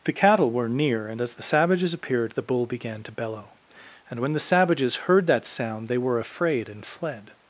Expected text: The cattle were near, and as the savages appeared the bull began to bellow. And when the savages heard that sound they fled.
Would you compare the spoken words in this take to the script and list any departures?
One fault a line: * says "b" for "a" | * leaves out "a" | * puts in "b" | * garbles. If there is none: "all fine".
* puts in "were afraid and"